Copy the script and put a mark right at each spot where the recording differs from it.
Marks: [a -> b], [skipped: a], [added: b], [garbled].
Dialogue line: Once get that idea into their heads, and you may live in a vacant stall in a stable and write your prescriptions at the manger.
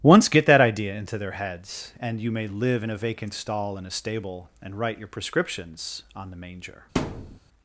Once get that idea into their heads, and you may live in a vacant stall in a stable and write your prescriptions [at -> on] the manger.